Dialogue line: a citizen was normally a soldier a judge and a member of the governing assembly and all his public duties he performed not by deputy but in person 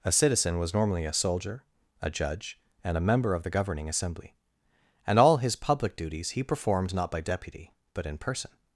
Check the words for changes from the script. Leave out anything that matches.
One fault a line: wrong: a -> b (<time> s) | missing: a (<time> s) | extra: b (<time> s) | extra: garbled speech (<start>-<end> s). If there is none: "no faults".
no faults